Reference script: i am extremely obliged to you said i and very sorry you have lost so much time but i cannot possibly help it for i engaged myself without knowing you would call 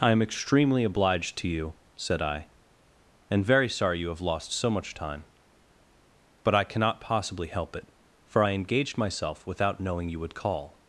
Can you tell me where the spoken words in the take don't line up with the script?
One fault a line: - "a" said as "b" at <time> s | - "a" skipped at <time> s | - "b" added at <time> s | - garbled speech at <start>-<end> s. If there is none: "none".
none